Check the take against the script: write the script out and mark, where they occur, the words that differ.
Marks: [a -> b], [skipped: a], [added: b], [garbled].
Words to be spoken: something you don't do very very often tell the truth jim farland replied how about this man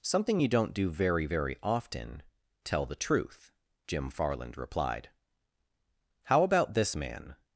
something you don't do very very often tell the truth jim farland replied how about this man